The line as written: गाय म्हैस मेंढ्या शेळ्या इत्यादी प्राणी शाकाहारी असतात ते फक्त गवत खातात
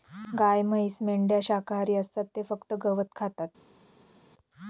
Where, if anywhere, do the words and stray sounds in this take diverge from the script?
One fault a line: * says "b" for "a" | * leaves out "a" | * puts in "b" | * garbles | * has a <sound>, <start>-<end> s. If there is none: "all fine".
* leaves out "शेळ्या इत्यादी प्राणी"